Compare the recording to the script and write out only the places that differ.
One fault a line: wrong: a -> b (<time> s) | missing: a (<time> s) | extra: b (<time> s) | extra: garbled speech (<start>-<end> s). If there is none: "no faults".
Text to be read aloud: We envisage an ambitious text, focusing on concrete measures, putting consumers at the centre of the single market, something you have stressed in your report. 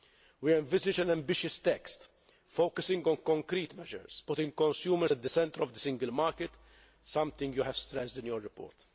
no faults